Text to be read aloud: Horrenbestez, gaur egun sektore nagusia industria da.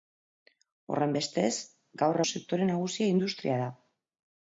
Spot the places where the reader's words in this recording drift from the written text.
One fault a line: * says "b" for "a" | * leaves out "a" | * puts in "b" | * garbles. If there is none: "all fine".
* leaves out "egun"